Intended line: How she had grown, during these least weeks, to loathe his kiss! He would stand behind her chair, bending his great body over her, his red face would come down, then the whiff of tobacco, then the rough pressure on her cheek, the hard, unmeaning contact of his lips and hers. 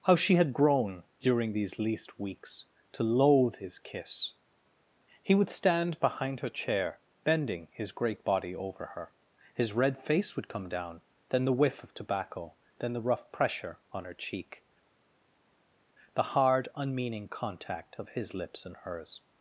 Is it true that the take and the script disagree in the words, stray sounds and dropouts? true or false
false